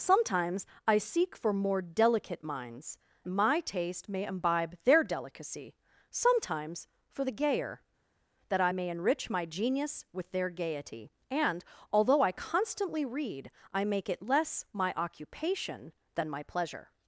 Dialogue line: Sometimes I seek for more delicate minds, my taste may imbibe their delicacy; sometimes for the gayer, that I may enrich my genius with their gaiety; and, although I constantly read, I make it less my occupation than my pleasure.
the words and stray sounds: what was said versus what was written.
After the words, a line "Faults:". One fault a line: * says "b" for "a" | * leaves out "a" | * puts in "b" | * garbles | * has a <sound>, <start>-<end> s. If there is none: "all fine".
Sometimes I seek for more delicate minds, my taste may imbibe their delicacy; sometimes for the gayer, that I may enrich my genius with their gaiety; and, although I constantly read, I make it less my occupation than my pleasure.
Faults:
all fine